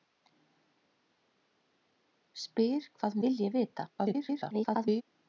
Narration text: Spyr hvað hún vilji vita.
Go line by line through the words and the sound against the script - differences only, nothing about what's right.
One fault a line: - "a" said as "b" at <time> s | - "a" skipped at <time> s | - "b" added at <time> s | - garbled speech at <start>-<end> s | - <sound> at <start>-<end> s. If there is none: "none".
- "hún" skipped at 3.2 s
- garbled speech at 4.0-5.0 s